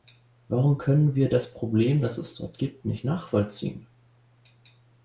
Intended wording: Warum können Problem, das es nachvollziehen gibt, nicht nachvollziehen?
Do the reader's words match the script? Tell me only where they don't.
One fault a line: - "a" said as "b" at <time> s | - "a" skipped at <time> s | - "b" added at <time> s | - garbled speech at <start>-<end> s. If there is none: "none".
- "wir das" added at 1.1 s
- "nachvollziehen" said as "dort" at 2.3 s